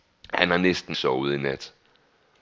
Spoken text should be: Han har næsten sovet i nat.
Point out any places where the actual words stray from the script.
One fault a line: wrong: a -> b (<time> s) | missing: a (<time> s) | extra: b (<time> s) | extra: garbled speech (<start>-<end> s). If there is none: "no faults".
no faults